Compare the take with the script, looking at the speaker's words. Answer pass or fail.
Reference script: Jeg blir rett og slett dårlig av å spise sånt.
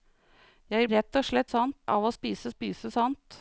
fail